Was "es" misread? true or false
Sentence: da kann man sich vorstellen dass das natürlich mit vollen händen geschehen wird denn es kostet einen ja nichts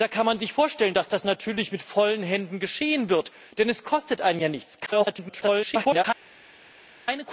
false